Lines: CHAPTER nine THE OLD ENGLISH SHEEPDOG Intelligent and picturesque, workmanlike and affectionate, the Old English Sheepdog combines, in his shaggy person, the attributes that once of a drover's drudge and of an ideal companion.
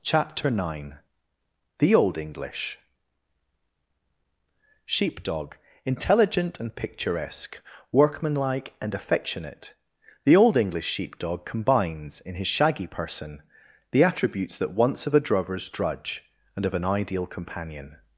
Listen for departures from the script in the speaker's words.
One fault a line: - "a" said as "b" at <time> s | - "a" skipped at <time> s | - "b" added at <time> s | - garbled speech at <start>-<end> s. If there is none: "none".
none